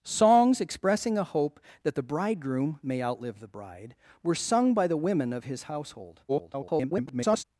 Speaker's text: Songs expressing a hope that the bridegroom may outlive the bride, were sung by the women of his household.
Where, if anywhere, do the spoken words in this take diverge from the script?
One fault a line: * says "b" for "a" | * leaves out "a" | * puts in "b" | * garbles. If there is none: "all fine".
* garbles